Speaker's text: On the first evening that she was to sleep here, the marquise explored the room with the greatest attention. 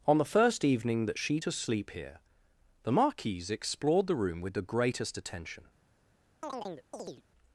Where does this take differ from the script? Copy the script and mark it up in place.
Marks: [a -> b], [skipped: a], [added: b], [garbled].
On the first evening that she [skipped: was] to sleep here, the marquise explored the room with the greatest attention.